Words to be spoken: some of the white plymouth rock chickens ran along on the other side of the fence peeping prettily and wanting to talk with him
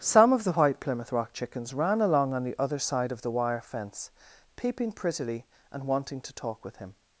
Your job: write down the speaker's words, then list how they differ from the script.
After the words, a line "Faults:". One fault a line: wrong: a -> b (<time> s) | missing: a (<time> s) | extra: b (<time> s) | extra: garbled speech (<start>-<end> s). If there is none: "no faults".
some of the white plymouth rock chickens ran along on the other side of the wire fence peeping prettily and wanting to talk with him
Faults:
extra: wire (3.3 s)